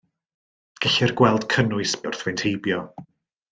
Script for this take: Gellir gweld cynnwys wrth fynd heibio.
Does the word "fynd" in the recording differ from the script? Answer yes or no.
no